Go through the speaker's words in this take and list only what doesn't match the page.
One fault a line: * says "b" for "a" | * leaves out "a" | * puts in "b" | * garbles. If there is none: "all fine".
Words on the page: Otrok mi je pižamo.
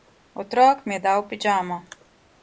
* puts in "dal"